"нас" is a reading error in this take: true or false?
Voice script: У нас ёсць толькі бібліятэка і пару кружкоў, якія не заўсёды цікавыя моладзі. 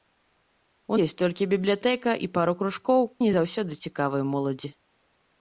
true